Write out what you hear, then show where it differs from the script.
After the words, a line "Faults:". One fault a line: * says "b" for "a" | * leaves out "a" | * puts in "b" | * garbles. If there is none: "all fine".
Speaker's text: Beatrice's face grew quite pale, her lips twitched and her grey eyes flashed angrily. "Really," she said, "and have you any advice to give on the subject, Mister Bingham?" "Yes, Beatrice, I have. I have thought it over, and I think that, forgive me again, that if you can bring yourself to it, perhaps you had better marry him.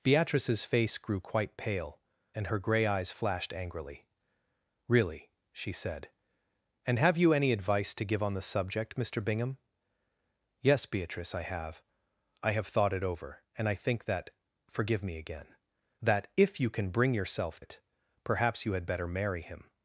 Beatrice's face grew quite pale, and her grey eyes flashed angrily. "Really," she said, "and have you any advice to give on the subject, Mister Bingham?" "Yes, Beatrice, I have. I have thought it over, and I think that, forgive me again, that if you can bring yourself it, perhaps you had better marry him.
Faults:
* leaves out "her lips twitched"
* leaves out "to"